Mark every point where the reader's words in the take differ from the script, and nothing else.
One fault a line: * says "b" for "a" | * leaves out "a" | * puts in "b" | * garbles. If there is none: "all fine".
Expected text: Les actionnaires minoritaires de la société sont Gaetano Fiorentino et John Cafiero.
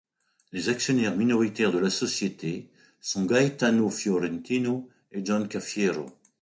all fine